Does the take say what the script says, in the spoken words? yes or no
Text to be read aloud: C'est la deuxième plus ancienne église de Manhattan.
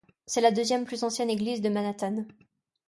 yes